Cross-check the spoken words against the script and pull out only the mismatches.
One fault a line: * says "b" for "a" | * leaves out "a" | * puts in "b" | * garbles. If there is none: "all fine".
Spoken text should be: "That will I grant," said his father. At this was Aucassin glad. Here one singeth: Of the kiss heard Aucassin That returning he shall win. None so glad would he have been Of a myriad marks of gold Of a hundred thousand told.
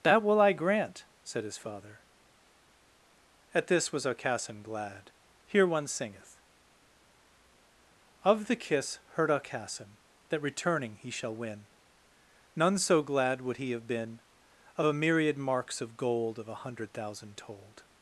all fine